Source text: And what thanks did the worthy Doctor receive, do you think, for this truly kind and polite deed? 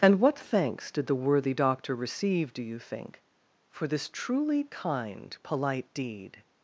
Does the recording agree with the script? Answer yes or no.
no